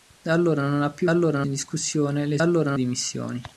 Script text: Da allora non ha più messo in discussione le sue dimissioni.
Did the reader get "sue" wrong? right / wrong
wrong